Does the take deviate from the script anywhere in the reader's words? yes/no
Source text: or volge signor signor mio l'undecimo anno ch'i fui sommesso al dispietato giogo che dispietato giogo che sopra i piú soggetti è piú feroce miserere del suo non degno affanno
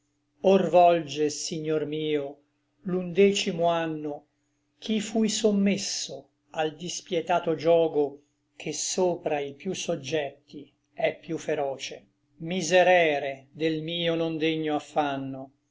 yes